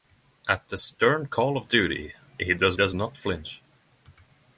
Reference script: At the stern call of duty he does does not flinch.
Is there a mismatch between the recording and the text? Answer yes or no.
no